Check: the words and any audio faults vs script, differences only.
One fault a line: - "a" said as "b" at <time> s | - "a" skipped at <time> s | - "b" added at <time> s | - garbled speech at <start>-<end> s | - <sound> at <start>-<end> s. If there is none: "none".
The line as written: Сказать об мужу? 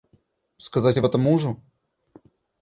- "этом" added at 1.0 s